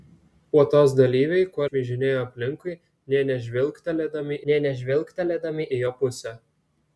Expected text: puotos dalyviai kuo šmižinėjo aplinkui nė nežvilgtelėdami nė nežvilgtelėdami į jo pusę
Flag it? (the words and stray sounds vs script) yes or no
no